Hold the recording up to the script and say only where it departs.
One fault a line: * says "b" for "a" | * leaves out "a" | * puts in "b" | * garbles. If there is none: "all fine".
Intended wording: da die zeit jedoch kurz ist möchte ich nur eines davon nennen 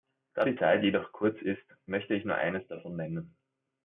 all fine